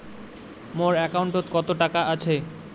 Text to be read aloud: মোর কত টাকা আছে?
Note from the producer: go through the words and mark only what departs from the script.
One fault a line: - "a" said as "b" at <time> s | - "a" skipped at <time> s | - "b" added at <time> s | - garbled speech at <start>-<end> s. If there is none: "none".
- "একাউন্টত" added at 1.1 s